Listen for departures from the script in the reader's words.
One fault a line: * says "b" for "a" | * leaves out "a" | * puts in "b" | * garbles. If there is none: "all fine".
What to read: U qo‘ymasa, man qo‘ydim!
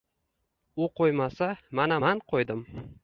* puts in "mana"